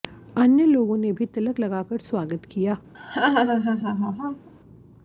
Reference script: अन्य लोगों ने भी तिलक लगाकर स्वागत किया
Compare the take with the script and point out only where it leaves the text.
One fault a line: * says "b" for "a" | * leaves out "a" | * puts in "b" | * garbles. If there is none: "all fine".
all fine